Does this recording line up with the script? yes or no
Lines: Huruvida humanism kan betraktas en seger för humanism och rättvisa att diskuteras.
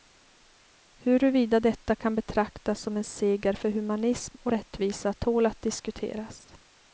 no